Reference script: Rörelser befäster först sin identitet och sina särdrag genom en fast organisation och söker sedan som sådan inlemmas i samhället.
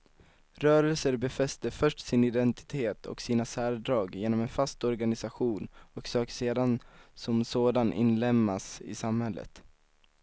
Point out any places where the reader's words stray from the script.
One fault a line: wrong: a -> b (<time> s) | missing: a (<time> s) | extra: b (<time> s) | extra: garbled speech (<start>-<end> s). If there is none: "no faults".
no faults